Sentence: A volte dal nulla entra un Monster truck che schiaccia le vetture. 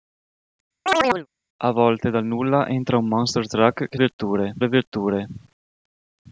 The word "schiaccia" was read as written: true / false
false